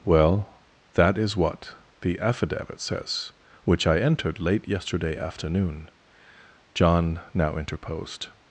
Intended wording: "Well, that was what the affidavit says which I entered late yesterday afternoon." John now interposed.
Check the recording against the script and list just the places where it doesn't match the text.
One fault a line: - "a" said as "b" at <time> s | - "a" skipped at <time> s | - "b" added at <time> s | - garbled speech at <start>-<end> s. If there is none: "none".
- "was" said as "is" at 1.1 s